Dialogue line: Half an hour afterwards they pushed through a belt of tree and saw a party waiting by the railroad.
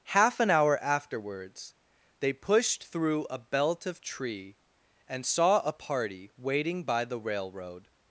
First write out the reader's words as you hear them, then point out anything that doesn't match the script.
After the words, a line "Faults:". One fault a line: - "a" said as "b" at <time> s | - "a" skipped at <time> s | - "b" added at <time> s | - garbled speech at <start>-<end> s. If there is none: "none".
Half an hour afterwards they pushed through a belt of tree and saw a party waiting by the railroad.
Faults:
none